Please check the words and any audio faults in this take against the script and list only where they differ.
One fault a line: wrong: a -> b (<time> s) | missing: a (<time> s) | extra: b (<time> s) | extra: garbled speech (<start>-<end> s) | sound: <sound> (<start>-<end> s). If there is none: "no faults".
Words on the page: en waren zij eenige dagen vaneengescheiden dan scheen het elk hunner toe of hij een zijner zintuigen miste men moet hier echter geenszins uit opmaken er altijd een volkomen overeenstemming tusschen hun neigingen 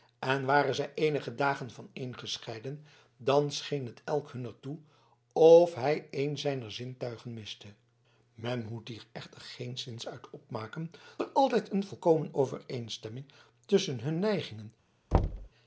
sound: thud (15.1-15.5 s)